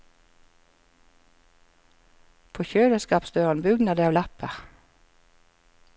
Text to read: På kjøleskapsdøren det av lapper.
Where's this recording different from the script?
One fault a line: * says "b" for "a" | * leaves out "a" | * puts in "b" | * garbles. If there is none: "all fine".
* puts in "bugner"